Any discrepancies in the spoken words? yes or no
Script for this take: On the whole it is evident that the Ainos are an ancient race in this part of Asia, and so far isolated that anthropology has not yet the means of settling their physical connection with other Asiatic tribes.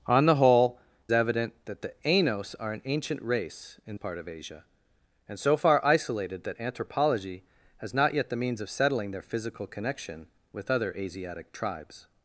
yes